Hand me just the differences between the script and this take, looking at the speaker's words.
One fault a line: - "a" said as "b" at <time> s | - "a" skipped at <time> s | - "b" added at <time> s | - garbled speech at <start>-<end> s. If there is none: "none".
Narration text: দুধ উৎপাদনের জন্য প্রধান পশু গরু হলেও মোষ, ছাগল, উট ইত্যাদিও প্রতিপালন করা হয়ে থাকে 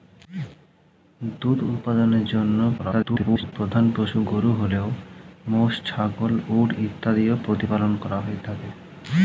- garbled speech at 2.8-3.5 s